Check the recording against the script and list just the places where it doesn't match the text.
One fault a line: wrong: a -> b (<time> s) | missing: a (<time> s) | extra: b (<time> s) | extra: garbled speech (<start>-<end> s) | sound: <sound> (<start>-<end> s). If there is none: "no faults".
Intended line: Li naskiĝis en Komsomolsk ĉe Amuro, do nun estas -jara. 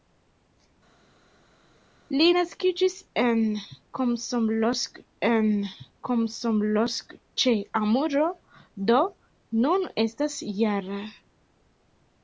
extra: en Komsomolsk (5.3 s)